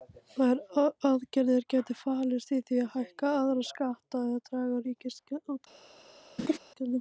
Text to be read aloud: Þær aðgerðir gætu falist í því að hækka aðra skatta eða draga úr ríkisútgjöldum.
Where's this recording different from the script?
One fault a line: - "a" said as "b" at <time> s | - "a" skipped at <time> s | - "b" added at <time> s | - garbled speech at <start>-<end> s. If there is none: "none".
none